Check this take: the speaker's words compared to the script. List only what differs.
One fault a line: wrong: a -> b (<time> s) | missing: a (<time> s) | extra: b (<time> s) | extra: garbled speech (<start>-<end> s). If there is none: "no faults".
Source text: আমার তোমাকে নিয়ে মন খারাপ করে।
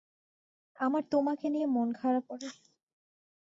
no faults